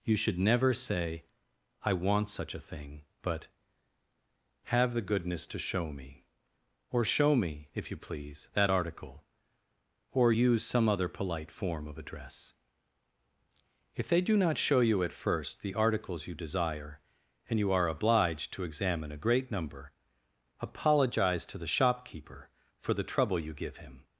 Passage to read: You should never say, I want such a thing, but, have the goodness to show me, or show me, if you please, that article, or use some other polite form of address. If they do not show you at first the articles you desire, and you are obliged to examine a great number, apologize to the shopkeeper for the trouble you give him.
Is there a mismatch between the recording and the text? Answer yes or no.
no